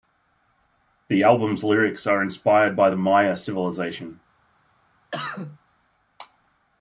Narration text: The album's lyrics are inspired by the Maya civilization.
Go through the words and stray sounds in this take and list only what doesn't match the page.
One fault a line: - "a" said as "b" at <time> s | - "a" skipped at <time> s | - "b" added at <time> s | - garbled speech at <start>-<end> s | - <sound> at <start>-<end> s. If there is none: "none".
- cough at 5.1-5.6 s